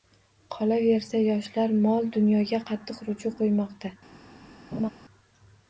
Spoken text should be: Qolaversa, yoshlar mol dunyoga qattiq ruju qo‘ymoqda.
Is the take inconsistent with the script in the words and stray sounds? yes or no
yes